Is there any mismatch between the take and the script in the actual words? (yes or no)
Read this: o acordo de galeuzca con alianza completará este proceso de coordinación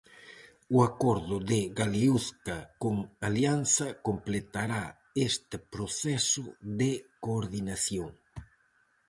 no